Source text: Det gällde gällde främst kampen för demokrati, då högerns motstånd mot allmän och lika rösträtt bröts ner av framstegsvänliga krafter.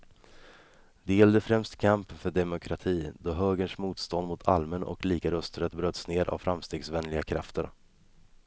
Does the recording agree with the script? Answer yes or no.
no